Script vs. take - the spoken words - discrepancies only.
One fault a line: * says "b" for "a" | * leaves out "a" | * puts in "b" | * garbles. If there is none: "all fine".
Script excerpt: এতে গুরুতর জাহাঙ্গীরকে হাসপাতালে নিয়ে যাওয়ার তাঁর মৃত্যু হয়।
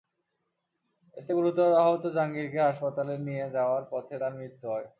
* puts in "আহত"
* puts in "পথে"